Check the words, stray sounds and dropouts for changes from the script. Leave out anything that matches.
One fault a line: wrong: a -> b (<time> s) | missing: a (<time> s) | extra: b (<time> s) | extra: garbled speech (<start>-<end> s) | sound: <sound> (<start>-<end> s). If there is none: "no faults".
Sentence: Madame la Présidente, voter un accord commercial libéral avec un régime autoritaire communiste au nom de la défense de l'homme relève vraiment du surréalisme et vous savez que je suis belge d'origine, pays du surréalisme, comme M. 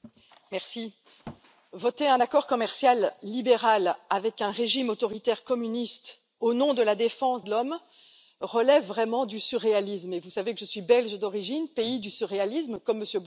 sound: thud (1.2-1.4 s)